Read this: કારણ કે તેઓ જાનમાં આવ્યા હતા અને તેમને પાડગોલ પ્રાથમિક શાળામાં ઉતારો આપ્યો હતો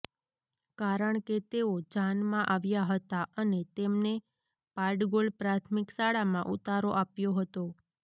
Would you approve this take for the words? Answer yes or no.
yes